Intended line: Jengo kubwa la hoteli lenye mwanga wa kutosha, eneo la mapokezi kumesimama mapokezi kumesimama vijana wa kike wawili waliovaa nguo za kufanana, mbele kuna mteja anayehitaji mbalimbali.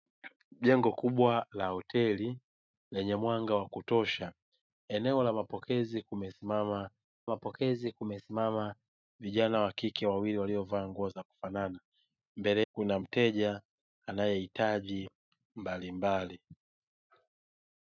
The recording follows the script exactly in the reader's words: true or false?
true